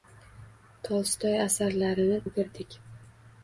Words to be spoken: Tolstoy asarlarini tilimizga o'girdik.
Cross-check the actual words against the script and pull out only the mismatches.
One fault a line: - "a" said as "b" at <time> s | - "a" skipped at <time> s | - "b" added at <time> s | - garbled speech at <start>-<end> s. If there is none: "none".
- "tilimizga" skipped at 2.2 s